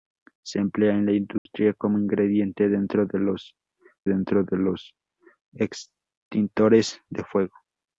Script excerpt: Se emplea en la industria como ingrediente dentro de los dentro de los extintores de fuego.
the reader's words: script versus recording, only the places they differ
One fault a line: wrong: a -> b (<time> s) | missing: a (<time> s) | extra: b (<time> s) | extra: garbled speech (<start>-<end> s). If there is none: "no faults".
no faults